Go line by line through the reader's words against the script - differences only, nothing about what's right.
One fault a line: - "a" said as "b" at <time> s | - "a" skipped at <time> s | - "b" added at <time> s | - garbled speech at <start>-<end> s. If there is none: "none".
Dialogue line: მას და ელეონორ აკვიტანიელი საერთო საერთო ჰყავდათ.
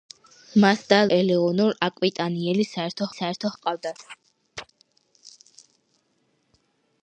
none